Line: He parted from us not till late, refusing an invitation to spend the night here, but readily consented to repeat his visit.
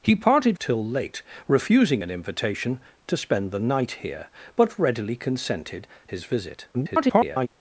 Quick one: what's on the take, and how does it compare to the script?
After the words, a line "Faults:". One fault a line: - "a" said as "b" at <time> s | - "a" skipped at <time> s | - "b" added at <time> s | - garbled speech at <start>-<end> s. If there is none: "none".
He parted till late, refusing an invitation to spend the night here, but readily consented his visit. [garbled]
Faults:
- "from us not" skipped at 0.6 s
- "to repeat" skipped at 5.9 s
- garbled speech at 6.7-7.5 s